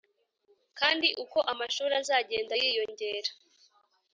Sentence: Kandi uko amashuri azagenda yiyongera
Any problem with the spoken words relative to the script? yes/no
no